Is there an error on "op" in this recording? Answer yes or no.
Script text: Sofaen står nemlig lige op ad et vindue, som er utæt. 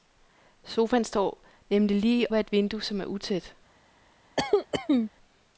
yes